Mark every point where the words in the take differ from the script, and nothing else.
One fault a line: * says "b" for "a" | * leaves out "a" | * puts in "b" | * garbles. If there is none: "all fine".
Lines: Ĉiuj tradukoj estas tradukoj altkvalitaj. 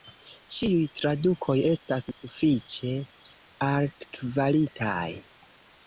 * says "sufiĉe" for "tradukoj"